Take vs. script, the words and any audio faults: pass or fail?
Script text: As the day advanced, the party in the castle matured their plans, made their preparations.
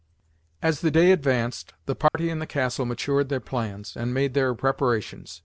fail